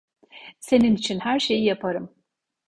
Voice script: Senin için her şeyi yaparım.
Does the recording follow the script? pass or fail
pass